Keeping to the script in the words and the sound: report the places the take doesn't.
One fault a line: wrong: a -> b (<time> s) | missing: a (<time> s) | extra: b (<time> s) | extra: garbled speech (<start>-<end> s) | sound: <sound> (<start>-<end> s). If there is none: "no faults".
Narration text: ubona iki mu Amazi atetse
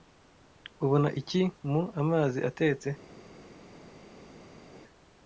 no faults